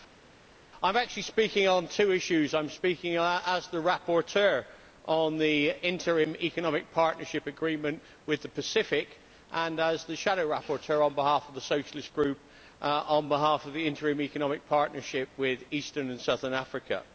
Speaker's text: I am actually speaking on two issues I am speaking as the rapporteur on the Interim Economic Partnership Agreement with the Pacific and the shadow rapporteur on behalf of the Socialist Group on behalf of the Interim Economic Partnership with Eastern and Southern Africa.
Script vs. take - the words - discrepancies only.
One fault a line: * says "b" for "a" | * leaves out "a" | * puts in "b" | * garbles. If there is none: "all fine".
* puts in "as"